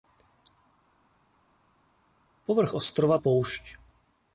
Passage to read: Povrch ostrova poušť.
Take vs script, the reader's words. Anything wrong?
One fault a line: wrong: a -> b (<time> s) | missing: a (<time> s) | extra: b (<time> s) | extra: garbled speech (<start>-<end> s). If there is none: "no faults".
no faults